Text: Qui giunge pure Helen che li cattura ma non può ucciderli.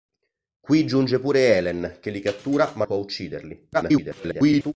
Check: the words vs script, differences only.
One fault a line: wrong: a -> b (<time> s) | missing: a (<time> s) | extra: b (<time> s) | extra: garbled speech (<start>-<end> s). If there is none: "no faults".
missing: non (2.9 s)
extra: garbled speech (3.7-4.7 s)